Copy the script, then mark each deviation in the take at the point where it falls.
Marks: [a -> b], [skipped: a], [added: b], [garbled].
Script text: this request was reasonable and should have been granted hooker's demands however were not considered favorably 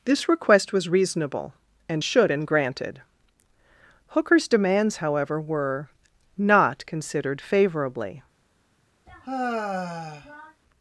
this request was reasonable and should [skipped: have] been granted hooker's demands however were not considered favorably